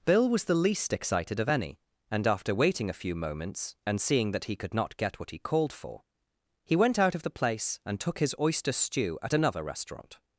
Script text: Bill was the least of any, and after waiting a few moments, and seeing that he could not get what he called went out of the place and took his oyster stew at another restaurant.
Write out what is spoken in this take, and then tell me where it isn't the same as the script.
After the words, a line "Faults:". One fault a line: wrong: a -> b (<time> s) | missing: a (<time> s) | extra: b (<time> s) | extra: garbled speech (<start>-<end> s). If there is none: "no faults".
Bill was the least excited of any, and after waiting a few moments, and seeing that he could not get what he called for, he went out of the place and took his oyster stew at another restaurant.
Faults:
extra: excited (0.9 s)
extra: for he (5.7 s)